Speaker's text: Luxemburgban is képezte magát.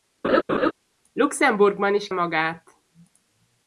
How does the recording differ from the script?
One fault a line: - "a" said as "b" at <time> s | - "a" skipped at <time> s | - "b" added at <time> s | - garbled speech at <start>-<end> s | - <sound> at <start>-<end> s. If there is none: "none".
- laugh at 0.2-0.7 s
- "képezte" skipped at 2.1 s